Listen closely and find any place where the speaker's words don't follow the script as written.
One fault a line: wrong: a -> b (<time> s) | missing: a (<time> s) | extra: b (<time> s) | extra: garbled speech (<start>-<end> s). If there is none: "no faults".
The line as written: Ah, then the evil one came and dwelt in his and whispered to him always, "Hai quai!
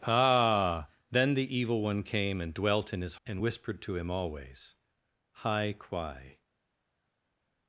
no faults